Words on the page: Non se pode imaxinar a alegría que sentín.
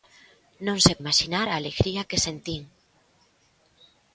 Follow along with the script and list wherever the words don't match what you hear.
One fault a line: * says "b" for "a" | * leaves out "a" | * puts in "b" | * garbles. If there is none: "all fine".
* leaves out "pode"